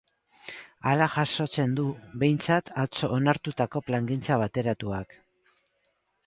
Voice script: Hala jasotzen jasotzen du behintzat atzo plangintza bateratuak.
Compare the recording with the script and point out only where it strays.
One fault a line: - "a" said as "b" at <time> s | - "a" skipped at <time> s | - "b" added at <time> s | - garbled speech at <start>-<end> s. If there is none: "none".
- "jasotzen" skipped at 1.8 s
- "onartutako" added at 3.2 s